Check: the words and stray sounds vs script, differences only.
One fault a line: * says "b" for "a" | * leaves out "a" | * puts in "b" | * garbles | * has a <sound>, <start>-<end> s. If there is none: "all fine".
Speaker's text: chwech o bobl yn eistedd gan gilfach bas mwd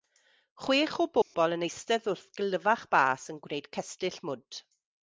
* has a dropout, 1.2-1.3 s
* says "wrth" for "gan"
* puts in "yn gwneud cestyll"